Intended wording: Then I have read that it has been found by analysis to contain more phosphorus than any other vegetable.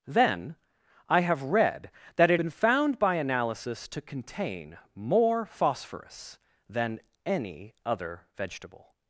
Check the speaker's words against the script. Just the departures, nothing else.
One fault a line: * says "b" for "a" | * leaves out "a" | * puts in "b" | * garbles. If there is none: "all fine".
* leaves out "has"